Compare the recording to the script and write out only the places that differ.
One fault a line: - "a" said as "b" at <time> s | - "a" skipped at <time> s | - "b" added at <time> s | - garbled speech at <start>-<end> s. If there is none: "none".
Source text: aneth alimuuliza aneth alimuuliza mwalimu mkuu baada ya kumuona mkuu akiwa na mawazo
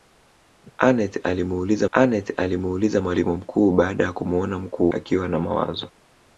none